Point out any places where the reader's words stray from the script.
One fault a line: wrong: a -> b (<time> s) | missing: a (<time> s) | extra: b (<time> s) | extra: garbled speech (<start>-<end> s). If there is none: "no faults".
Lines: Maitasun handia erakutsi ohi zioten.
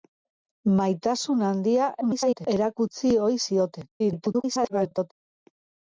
extra: garbled speech (2.0-2.5 s)
extra: garbled speech (4.0-5.1 s)